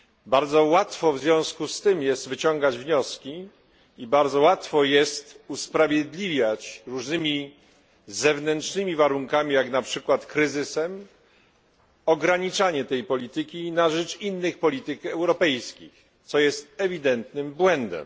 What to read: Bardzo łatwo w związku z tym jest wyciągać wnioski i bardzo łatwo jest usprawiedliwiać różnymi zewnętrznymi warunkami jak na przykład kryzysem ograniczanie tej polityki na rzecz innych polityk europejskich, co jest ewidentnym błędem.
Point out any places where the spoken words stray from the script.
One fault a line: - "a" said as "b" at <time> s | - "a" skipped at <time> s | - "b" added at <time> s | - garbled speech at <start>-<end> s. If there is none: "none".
none